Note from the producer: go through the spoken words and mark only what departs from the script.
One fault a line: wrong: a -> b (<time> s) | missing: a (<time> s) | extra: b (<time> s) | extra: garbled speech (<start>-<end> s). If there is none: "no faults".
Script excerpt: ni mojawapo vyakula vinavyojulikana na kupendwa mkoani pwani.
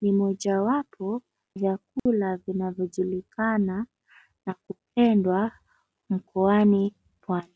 no faults